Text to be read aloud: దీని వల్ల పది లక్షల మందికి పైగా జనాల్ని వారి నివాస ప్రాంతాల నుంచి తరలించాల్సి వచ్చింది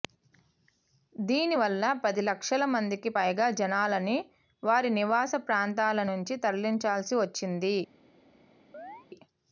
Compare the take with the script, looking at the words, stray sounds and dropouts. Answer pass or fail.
fail